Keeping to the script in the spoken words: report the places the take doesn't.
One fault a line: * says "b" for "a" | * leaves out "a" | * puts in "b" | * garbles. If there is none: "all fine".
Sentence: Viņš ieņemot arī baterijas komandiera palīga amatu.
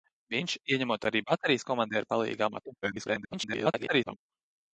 * garbles